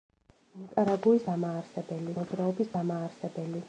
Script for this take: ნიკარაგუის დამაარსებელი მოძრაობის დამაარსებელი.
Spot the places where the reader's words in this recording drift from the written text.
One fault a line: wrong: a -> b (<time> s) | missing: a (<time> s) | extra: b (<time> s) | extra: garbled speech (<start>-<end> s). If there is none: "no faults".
no faults